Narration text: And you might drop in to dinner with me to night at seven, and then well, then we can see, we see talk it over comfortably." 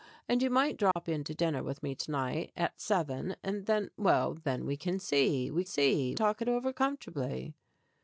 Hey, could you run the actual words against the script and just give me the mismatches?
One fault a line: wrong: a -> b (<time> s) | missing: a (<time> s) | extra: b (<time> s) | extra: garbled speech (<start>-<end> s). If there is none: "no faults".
no faults